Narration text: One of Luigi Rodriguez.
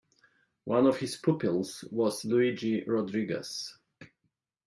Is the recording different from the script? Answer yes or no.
yes